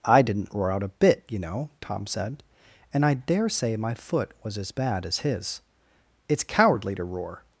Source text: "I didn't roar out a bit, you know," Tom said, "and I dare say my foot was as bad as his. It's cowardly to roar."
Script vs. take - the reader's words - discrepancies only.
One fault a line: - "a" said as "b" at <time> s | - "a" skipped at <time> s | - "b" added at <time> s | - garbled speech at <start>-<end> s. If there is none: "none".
none